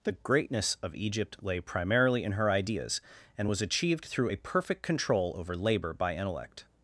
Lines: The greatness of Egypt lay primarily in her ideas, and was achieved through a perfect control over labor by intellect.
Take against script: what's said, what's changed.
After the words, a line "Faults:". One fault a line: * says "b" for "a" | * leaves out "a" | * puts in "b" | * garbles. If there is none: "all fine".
The greatness of Egypt lay primarily in her ideas, and was achieved through a perfect control over labor by intellect.
Faults:
all fine